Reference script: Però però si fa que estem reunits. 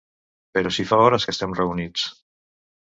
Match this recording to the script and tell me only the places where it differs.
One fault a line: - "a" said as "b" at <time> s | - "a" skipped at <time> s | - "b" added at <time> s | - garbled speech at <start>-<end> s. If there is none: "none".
- "però" skipped at 0.7 s
- "hores" added at 1.1 s